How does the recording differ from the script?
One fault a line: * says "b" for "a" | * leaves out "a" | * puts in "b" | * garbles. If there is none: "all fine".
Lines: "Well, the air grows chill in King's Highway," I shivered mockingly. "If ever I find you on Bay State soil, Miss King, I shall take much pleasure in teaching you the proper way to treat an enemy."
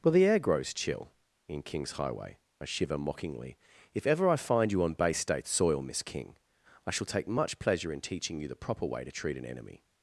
* says "shiver" for "shivered"